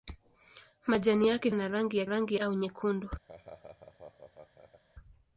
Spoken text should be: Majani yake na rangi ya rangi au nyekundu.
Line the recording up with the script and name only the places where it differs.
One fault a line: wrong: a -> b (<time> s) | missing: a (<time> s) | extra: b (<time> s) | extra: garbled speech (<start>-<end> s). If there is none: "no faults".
no faults